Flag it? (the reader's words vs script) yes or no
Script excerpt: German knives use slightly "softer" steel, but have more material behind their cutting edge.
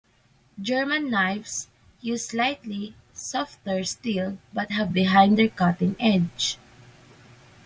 yes